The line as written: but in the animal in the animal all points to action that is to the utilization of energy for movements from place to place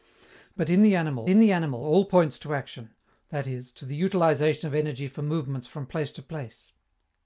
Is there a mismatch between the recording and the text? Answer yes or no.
no